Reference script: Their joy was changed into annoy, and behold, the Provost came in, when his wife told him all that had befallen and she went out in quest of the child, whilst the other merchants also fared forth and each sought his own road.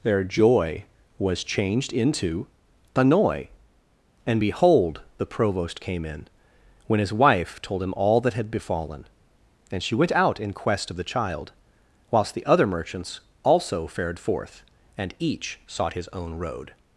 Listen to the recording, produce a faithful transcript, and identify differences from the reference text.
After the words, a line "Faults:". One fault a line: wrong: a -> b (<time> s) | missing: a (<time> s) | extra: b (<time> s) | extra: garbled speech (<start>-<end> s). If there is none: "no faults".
Their joy was changed into annoy, and behold, the Provost came in, when his wife told him all that had befallen and she went out in quest of the child, whilst the other merchants also fared forth and each sought his own road.
Faults:
no faults